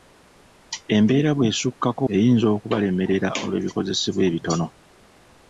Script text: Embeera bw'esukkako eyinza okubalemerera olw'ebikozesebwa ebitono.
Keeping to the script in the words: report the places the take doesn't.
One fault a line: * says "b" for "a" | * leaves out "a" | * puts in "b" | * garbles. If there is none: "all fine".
all fine